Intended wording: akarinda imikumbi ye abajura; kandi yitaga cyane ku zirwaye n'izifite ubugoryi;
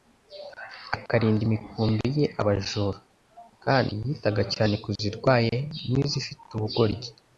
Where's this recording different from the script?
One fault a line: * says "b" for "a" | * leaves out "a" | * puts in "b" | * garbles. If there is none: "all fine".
all fine